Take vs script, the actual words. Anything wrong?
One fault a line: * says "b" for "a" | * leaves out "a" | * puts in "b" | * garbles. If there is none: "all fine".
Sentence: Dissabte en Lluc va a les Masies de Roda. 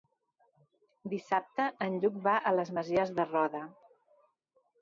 all fine